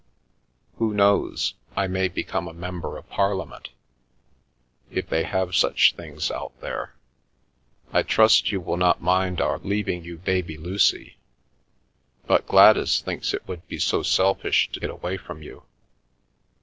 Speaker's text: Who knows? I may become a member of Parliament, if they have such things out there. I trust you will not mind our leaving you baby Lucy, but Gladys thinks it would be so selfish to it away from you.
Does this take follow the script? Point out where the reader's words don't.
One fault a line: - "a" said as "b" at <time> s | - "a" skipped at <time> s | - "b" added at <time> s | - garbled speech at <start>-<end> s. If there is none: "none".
none